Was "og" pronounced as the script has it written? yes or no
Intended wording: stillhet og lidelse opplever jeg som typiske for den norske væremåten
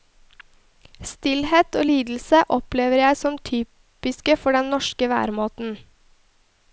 yes